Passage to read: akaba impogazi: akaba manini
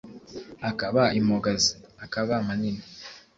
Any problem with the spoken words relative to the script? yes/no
no